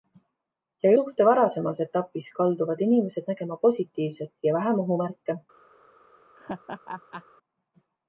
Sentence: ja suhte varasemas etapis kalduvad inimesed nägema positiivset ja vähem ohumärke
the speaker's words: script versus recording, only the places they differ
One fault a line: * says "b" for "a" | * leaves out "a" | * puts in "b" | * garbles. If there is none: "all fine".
all fine